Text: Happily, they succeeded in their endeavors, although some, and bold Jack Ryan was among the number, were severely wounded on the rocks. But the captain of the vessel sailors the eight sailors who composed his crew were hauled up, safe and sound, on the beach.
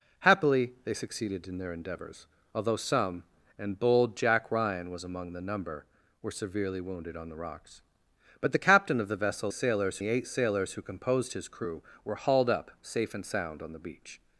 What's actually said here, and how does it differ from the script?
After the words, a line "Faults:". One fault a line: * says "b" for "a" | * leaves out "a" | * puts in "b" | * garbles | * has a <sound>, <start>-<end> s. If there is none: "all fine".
Happily, they succeeded in their endeavors, although some, and bold Jack Ryan was among the number, were severely wounded on the rocks. But the captain of the vessel sailors the eight sailors who composed his crew were hauled up, safe and sound, on the beach.
Faults:
all fine